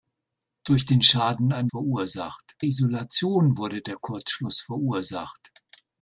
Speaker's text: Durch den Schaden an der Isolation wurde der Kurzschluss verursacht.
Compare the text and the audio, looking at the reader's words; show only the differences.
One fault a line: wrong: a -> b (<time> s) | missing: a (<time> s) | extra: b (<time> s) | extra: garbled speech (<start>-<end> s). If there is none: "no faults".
wrong: der -> verursacht (1.7 s)